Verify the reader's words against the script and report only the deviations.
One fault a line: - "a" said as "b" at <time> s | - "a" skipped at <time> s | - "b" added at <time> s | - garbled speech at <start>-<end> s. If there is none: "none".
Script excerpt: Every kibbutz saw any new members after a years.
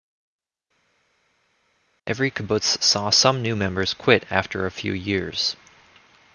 - "any" said as "some" at 3.1 s
- "quit" added at 3.9 s
- "few" added at 4.7 s